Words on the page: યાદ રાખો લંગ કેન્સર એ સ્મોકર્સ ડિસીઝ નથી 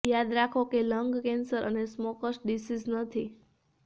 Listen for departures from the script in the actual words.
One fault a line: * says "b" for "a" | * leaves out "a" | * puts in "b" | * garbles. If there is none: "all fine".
* puts in "કે"